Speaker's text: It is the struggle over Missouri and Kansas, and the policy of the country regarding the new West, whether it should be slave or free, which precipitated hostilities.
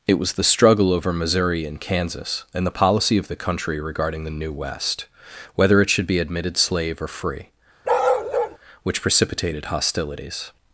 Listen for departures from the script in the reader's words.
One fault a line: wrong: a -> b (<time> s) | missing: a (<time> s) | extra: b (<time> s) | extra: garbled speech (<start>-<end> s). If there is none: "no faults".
wrong: is -> was (0.1 s)
extra: admitted (6.2 s)